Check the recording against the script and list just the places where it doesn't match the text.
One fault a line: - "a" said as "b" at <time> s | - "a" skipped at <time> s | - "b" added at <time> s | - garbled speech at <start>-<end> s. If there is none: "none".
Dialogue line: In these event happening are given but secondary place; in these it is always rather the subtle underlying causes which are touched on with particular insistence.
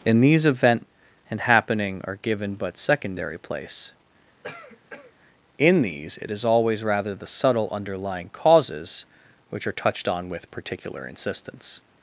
- "and" added at 1.3 s